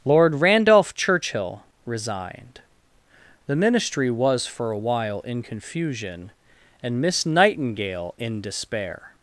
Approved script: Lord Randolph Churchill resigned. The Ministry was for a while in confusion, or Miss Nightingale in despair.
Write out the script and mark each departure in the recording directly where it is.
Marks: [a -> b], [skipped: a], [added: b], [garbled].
Lord Randolph Churchill resigned. The Ministry was for a while in confusion, [or -> and] Miss Nightingale in despair.